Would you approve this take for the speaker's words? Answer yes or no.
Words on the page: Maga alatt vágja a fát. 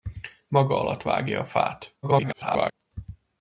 no